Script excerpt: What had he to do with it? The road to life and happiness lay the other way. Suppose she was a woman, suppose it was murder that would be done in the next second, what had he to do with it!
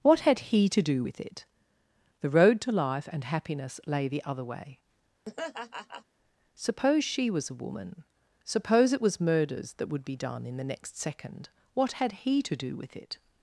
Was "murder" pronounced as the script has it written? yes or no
no